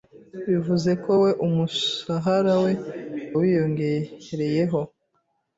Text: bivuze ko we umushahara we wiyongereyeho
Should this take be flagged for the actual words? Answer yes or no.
no